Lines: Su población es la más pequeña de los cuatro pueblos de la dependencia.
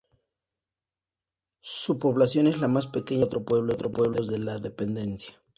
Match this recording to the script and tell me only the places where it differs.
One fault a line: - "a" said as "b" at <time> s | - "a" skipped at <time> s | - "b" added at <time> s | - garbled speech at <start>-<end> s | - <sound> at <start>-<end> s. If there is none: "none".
none